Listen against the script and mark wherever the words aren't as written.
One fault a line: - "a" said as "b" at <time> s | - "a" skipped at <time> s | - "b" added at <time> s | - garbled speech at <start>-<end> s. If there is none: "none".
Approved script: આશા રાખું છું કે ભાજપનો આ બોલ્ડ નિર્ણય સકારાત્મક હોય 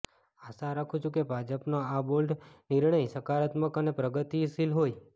- "અને પ્રગતિશીલ" added at 3.8 s